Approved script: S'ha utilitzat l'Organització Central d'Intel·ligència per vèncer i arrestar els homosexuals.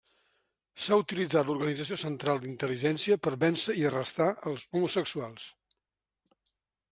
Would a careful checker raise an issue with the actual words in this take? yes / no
no